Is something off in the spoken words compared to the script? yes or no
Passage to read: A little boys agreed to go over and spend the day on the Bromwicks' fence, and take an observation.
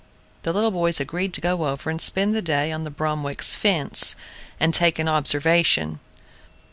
yes